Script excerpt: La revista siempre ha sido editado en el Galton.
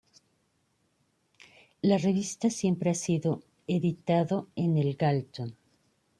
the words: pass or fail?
pass